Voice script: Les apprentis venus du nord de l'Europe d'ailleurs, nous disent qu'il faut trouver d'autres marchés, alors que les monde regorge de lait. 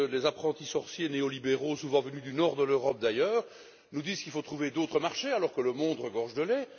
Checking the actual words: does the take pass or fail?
fail